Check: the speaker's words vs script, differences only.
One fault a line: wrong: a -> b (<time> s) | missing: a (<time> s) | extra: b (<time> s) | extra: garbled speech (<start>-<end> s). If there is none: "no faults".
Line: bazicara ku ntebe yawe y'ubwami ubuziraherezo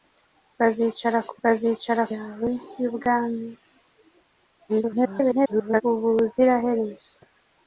wrong: ntebe -> bazicara (1.4 s)
extra: garbled speech (4.7-5.8 s)